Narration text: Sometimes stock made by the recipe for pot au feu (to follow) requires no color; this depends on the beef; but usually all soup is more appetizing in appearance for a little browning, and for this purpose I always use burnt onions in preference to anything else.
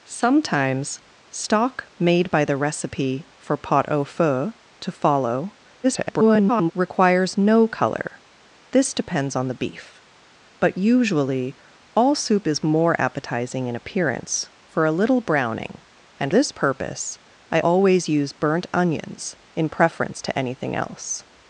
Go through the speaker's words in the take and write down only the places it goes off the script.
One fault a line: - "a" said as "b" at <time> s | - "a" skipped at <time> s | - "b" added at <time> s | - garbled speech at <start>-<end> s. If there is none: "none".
- garbled speech at 5.8-6.7 s
- "for" skipped at 16.3 s